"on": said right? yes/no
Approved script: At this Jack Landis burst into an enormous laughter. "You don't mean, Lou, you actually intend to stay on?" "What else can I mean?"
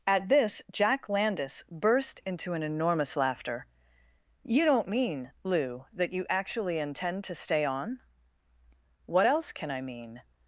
yes